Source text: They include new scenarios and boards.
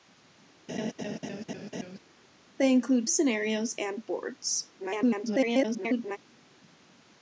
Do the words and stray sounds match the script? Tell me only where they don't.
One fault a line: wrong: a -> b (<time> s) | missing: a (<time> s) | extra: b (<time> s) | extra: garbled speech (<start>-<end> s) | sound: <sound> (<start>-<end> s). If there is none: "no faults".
sound: laugh (0.7-2.0 s)
missing: new (3.1 s)
extra: garbled speech (4.8-6.2 s)